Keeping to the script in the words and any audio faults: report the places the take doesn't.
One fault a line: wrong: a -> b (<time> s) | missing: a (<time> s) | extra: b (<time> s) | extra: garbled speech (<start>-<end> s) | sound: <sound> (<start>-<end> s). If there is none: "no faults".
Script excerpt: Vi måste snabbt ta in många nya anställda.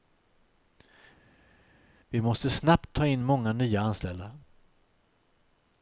no faults